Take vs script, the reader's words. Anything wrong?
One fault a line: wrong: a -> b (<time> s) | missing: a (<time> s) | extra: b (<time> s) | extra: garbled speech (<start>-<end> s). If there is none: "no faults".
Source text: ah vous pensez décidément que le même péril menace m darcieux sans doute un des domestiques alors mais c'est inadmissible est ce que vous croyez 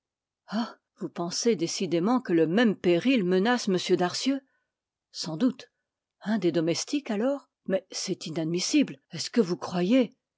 no faults